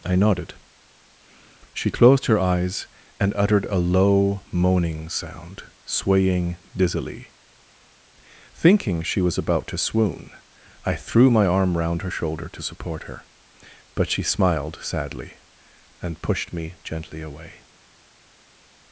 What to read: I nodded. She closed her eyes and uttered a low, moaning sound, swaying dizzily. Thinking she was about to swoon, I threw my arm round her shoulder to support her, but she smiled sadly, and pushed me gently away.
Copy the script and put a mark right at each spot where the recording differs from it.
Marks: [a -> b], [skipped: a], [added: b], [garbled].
I nodded. She closed her eyes and uttered a low, moaning sound, swaying dizzily. Thinking she was about to swoon, I threw my arm round her shoulder to support her, but she smiled sadly, and pushed me gently away.